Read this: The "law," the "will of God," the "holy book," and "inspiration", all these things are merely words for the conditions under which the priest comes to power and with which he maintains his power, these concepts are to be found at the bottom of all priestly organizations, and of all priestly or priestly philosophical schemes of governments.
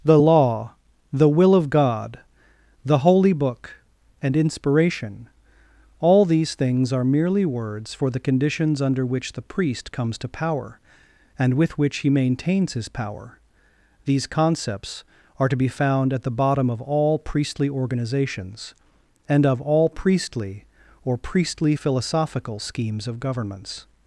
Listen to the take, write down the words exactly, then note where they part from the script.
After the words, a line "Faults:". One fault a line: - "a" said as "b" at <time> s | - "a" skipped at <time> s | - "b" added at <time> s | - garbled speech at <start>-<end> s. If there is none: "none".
The "law," the "will of God," the "holy book," and "inspiration", all these things are merely words for the conditions under which the priest comes to power and with which he maintains his power, these concepts are to be found at the bottom of all priestly organizations, and of all priestly or priestly philosophical schemes of governments.
Faults:
none